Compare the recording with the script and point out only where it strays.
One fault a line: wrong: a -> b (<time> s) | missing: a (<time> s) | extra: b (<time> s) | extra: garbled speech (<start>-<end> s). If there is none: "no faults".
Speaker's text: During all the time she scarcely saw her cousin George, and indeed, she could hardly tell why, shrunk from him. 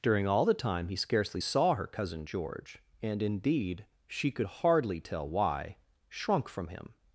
wrong: she -> he (0.9 s)